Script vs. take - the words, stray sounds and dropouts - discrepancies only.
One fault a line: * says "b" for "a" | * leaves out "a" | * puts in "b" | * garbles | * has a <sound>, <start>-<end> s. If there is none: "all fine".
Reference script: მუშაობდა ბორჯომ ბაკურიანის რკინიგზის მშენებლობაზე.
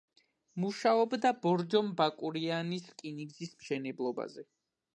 all fine